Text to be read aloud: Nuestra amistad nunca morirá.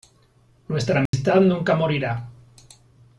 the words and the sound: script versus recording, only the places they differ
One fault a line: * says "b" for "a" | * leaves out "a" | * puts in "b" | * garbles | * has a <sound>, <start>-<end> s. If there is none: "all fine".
* has a dropout, 1.1-1.1 s